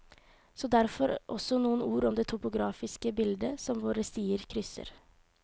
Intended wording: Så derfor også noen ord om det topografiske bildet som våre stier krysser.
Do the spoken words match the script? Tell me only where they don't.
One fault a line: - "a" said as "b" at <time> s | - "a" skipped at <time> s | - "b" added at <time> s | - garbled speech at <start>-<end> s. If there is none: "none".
none